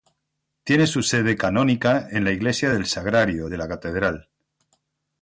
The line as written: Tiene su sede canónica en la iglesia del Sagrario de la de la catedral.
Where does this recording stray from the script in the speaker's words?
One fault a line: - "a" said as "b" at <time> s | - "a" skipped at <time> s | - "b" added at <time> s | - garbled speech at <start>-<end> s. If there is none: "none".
- "de la" skipped at 3.7 s